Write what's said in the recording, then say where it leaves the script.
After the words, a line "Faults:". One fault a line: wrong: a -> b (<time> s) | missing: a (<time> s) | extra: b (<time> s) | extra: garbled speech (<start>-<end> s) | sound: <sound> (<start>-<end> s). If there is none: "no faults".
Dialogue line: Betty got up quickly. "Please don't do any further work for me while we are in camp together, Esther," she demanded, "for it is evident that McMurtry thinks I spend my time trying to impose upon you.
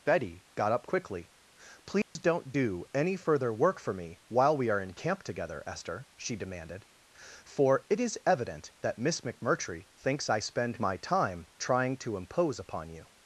Betty got up quickly. "Please don't do any further work for me while we are in camp together, Esther," she demanded, "for it is evident that Miss McMurtry thinks I spend my time trying to impose upon you.
Faults:
sound: dropout (2.0-2.2 s)
extra: Miss (9.0 s)